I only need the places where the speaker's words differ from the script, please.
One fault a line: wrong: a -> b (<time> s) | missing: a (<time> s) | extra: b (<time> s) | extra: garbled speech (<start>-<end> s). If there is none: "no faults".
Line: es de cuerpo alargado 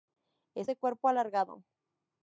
no faults